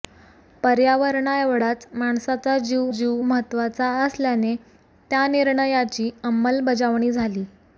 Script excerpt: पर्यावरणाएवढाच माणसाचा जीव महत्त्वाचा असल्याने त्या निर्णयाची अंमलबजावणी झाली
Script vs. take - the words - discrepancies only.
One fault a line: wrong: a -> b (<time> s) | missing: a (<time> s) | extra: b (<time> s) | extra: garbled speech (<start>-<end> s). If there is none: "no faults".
extra: जीव (2.9 s)